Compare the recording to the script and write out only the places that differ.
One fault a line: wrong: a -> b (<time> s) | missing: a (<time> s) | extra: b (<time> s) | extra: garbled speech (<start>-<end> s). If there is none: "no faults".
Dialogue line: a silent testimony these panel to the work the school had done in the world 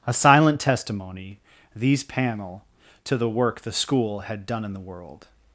no faults